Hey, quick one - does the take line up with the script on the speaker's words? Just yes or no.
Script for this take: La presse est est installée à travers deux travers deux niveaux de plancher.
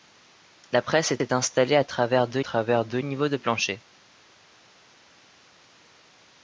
yes